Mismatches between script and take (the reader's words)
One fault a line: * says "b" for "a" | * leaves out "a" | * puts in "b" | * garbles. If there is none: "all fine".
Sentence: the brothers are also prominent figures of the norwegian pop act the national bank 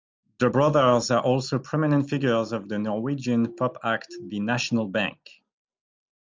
all fine